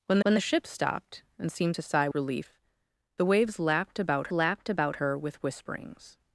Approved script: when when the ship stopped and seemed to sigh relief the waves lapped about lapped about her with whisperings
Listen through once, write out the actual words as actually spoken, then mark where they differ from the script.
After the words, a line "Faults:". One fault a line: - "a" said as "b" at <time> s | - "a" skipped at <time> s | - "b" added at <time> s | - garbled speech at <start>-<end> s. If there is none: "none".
when when the ship stopped and seemed to sigh relief the waves lapped about lapped about her with whisperings
Faults:
none